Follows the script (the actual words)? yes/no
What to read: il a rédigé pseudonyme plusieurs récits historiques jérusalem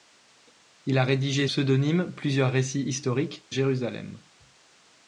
yes